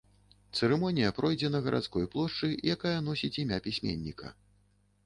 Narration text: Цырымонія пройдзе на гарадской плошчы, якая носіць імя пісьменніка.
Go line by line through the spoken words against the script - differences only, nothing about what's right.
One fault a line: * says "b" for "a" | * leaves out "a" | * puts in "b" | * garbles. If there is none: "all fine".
all fine